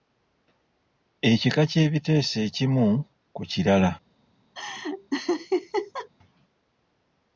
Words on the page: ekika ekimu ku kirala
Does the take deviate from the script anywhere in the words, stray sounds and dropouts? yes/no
yes